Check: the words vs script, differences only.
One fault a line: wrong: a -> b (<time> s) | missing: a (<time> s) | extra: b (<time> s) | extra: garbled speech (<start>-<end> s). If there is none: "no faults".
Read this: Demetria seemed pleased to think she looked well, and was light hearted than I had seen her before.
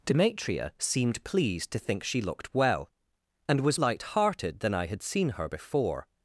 no faults